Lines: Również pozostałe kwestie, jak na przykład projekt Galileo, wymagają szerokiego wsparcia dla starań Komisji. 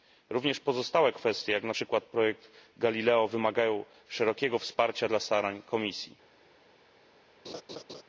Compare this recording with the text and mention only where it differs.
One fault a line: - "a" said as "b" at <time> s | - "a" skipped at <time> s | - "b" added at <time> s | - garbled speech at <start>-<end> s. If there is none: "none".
none